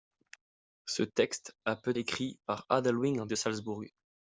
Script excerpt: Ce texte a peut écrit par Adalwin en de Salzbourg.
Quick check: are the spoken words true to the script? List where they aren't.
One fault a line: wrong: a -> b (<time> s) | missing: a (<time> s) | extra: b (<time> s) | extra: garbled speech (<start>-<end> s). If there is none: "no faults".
no faults